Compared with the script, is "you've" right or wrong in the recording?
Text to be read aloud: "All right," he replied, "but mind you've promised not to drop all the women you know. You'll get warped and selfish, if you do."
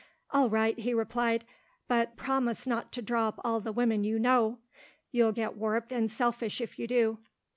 wrong